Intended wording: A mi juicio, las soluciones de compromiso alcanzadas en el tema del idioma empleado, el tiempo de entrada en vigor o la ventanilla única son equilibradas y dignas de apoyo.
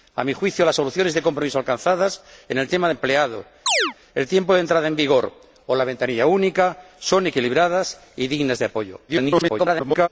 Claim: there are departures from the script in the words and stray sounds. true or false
true